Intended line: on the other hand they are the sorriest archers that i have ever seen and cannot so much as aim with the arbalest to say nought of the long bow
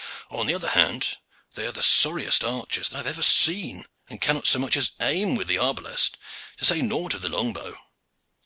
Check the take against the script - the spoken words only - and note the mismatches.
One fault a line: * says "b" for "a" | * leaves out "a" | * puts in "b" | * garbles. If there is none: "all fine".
all fine